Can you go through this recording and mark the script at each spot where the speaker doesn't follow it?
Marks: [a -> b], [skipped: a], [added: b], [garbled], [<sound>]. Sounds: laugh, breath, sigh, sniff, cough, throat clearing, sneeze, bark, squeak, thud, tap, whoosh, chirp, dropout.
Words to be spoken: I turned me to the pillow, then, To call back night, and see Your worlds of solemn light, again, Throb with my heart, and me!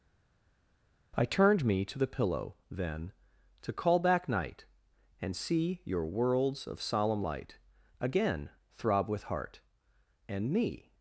I turned me to the pillow, then, To call back night, and see Your worlds of solemn light, again, Throb with [skipped: my] heart, and me!